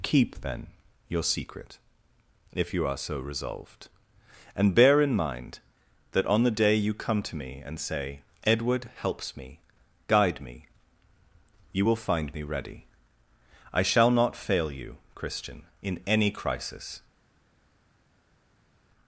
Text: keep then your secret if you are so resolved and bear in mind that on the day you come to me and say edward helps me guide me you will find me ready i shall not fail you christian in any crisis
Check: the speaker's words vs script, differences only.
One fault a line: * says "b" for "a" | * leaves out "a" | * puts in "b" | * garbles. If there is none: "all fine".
all fine